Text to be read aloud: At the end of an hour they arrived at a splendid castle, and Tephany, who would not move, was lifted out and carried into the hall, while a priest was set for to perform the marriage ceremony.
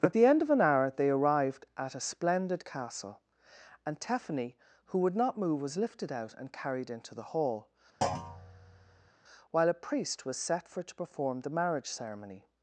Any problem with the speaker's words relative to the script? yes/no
no